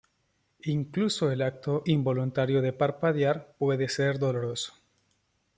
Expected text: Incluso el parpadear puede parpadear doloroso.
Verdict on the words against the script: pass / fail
fail